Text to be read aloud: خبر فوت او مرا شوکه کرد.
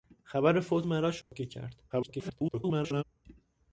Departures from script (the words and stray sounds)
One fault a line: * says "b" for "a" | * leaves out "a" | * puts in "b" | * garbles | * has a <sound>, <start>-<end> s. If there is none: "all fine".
* leaves out "او"
* has a dropout, 1.2-1.3 s
* garbles